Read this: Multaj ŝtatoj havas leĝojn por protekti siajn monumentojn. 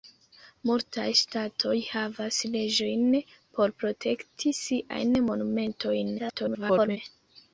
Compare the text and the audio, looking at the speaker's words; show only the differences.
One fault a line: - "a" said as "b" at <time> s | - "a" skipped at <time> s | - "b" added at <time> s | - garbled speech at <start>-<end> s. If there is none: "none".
- garbled speech at 6.2-7.0 s